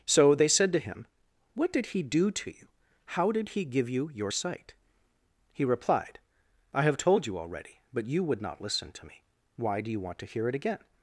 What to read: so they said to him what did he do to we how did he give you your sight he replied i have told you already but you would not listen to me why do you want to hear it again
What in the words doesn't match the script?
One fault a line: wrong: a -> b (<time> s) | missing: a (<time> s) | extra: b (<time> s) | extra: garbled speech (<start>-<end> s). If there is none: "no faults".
wrong: we -> you (2.5 s)